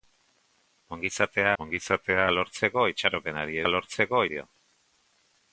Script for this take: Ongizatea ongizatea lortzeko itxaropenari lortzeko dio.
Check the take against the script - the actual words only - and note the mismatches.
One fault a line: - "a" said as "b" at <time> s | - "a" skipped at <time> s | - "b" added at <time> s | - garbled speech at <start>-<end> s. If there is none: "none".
none